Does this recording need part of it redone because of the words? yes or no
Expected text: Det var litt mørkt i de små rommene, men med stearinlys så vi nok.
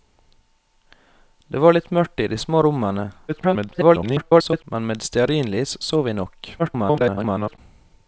yes